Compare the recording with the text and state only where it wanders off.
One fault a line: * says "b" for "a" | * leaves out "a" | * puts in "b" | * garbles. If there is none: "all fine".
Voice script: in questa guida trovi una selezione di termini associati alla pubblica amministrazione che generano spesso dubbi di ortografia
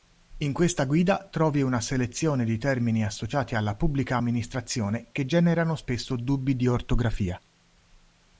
all fine